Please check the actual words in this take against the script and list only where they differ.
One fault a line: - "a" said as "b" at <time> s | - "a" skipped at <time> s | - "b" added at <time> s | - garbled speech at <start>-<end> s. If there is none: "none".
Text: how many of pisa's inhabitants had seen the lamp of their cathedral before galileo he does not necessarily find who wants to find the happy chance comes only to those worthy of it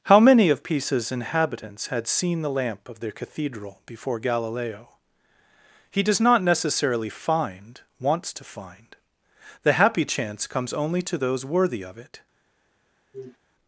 - "who" skipped at 7.8 s